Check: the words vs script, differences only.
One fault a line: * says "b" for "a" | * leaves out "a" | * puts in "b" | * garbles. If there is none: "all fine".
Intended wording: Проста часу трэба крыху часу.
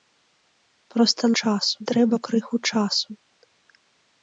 all fine